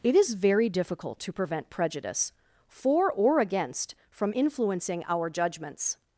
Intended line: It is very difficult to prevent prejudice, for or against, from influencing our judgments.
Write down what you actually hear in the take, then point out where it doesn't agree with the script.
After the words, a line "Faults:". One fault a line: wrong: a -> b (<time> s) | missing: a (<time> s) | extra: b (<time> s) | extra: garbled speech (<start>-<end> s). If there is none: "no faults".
It is very difficult to prevent prejudice, for or against, from influencing our judgments.
Faults:
no faults